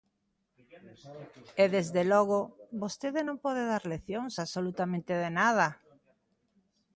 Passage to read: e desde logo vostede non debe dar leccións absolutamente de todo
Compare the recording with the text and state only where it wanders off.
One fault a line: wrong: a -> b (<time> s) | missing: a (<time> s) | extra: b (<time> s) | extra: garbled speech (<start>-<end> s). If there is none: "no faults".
wrong: debe -> pode (3.4 s)
wrong: todo -> nada (5.4 s)